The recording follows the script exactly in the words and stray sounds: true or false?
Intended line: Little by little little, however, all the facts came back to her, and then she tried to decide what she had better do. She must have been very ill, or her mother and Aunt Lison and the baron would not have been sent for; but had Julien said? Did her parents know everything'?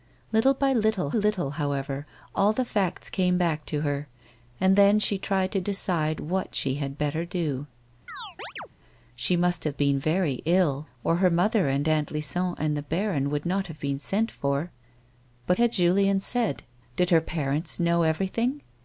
false